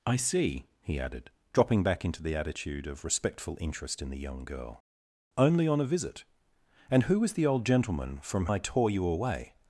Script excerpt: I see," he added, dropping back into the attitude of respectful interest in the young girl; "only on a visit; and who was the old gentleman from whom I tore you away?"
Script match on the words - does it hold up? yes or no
no